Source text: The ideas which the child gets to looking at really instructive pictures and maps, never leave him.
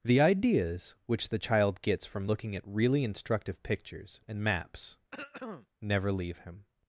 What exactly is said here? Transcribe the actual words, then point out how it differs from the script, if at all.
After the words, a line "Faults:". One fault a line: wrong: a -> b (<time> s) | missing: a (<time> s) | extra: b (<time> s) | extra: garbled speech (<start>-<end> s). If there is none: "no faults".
The ideas which the child gets from looking at really instructive pictures and maps, never leave him.
Faults:
wrong: to -> from (2.1 s)